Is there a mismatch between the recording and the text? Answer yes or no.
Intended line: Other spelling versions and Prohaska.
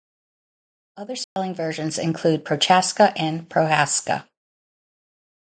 yes